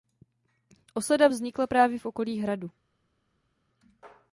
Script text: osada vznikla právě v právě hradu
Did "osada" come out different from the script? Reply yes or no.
no